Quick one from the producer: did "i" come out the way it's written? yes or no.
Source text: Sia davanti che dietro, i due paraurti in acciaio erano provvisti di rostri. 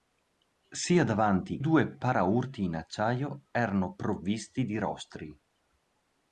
no